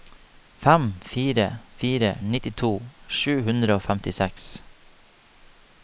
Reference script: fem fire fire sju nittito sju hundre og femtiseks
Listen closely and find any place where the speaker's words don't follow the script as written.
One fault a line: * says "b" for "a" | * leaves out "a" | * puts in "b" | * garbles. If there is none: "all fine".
* leaves out "sju"